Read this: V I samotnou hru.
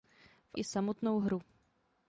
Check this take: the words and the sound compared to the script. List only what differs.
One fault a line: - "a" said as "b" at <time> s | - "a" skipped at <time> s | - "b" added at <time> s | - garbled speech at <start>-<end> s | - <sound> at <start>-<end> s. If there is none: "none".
none